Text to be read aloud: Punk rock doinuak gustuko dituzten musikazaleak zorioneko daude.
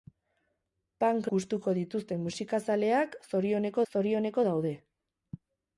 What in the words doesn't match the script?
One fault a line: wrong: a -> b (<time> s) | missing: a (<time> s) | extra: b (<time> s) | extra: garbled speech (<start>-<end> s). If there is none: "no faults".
missing: rock doinuak (1.3 s)
extra: zorioneko (3.9 s)